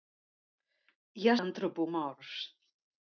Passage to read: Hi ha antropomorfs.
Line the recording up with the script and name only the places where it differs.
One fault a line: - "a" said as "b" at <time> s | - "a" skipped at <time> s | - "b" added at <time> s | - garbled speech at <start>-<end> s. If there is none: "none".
none